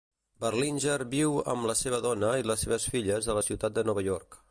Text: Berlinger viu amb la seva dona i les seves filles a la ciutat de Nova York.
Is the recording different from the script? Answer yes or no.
no